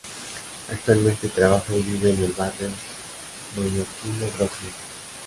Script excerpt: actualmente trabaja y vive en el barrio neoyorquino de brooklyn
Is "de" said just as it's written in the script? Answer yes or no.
no